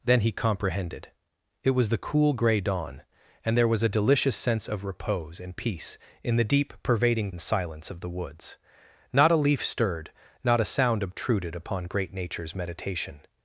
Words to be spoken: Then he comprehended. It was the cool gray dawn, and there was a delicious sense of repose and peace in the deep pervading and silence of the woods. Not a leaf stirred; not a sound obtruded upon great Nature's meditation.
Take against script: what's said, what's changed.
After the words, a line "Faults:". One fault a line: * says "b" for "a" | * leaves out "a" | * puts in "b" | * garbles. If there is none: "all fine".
Then he comprehended. It was the cool gray dawn, and there was a delicious sense of repose and peace in the deep pervading and silence of the woods. Not a leaf stirred; not a sound obtruded upon great Nature's meditation.
Faults:
all fine